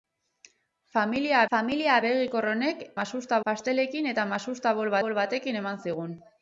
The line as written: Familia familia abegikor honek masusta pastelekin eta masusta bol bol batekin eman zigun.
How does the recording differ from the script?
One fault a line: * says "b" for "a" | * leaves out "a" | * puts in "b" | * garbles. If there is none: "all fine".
all fine